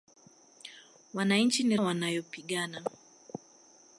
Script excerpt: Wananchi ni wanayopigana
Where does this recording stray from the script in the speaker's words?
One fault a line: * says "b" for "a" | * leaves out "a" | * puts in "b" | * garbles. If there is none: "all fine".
all fine